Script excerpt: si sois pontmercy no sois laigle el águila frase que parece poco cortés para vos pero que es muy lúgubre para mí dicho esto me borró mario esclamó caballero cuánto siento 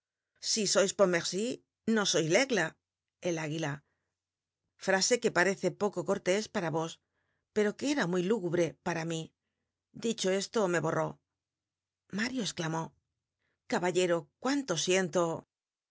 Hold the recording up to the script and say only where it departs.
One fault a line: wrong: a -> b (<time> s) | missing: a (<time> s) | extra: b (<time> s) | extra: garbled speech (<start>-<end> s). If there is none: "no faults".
wrong: es -> era (7.9 s)